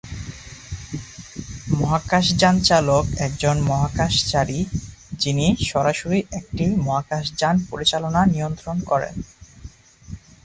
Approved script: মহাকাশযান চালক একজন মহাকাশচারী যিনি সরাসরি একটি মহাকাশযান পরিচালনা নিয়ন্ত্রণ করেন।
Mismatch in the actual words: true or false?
false